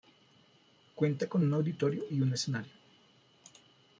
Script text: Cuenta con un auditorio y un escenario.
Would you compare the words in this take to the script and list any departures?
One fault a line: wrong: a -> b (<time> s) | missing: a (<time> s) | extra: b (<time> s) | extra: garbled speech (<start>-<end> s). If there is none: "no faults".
no faults